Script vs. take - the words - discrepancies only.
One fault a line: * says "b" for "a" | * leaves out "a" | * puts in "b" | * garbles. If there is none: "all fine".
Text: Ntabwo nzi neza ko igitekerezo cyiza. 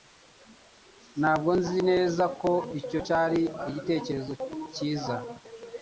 * puts in "icyo cyari"